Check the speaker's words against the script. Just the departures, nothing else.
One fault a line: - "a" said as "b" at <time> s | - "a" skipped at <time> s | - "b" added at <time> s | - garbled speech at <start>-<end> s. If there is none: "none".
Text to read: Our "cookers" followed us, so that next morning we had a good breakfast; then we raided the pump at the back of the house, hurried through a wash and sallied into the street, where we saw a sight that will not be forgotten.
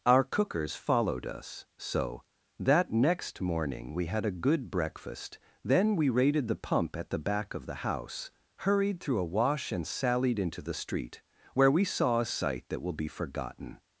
- "not" skipped at 12.9 s